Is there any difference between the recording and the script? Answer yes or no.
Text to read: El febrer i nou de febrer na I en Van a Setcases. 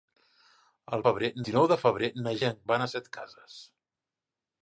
no